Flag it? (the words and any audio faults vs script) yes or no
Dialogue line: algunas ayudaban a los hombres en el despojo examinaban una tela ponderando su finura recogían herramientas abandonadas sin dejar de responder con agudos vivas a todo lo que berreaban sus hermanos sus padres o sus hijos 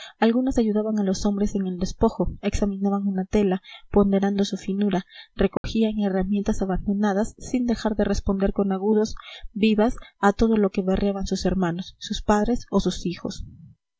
yes